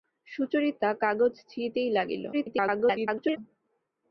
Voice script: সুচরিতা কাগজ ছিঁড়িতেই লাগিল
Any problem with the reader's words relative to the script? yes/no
yes